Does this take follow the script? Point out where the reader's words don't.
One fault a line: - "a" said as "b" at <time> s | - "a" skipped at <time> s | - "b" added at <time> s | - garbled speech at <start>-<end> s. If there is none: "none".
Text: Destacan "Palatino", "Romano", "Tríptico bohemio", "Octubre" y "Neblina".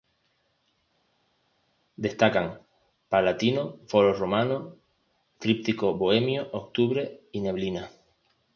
- "Foro" added at 3.9 s